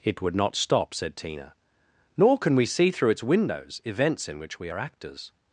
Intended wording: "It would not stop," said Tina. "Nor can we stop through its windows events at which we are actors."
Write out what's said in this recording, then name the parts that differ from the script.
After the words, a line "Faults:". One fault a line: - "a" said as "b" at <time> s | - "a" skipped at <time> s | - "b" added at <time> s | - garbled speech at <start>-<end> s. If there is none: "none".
"It would not stop," said Tina. "Nor can we see through its windows events in which we are actors."
Faults:
- "stop" said as "see" at 2.6 s
- "at" said as "in" at 4.3 s